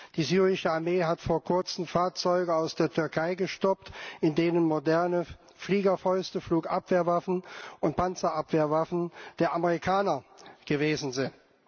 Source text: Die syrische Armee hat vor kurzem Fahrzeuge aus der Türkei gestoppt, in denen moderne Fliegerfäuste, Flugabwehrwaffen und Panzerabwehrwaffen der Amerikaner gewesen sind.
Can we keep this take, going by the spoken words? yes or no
yes